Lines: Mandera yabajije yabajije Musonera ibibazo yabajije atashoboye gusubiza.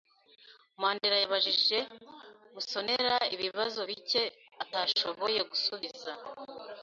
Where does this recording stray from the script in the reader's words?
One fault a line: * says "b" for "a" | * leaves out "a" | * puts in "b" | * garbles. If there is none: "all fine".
* leaves out "yabajije"
* says "bike" for "yabajije"